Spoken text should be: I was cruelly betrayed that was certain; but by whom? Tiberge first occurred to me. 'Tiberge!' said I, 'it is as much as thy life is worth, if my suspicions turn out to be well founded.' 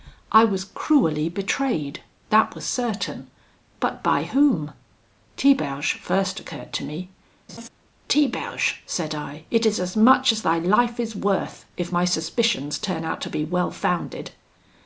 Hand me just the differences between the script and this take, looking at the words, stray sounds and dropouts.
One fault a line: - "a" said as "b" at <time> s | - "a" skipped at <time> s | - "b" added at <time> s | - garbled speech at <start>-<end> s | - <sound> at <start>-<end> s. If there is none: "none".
- laugh at 7.5-7.7 s